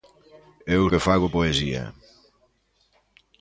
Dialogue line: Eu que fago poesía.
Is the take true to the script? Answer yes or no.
yes